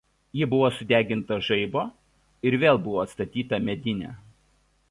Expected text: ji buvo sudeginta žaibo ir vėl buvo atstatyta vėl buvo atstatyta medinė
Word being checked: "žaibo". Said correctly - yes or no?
yes